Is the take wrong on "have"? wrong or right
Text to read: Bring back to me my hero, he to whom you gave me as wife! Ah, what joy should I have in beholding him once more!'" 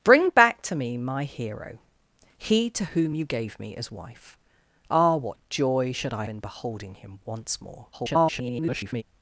wrong